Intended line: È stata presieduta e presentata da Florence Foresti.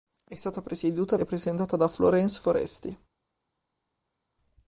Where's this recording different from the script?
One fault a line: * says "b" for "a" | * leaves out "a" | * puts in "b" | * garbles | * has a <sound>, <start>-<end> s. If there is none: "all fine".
all fine